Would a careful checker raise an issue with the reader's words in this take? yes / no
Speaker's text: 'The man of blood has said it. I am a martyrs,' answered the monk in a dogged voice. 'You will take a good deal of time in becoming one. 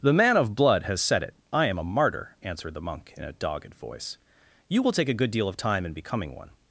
yes